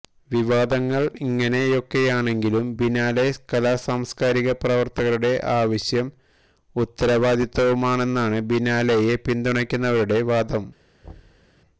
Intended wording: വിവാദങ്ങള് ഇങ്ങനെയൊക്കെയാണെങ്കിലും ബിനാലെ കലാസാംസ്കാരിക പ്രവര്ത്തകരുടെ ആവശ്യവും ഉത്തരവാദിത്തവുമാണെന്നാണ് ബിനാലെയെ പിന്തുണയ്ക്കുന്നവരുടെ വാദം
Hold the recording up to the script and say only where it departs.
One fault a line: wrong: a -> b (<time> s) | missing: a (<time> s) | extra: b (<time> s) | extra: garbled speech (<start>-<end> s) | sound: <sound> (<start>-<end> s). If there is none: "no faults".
sound: thud (11.0-11.5 s)